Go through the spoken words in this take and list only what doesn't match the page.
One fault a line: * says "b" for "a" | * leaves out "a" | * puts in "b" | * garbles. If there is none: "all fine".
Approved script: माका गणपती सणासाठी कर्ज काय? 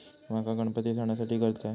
all fine